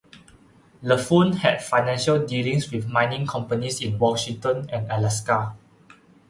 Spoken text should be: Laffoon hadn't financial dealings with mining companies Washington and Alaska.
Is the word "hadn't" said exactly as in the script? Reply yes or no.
no